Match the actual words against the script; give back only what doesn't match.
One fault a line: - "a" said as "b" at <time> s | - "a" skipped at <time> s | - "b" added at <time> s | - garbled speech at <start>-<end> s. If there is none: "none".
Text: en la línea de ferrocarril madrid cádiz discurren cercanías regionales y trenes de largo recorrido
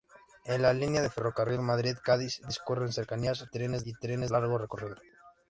- "regionales" said as "trenes" at 3.4 s
- "de" skipped at 4.3 s